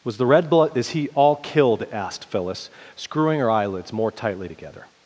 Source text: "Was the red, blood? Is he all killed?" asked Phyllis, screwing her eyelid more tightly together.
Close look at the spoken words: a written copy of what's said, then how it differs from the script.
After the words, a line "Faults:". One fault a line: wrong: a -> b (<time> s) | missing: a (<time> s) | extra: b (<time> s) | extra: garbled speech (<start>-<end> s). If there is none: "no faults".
"Was the red, blood? Is he all killed?" asked Phyllis, screwing her eyelids more tightly together.
Faults:
wrong: eyelid -> eyelids (3.5 s)